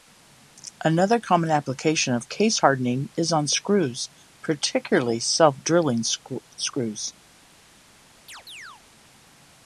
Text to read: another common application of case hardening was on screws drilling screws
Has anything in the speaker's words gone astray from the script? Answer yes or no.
yes